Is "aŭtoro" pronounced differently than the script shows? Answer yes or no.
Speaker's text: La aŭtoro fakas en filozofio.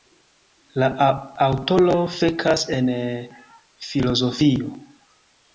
no